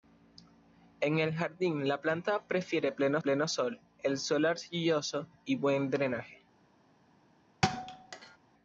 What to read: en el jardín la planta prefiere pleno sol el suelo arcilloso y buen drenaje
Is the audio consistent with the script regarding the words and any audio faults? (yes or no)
no